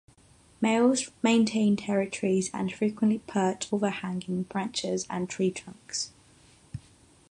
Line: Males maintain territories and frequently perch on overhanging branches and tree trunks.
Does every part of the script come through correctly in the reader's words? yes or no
no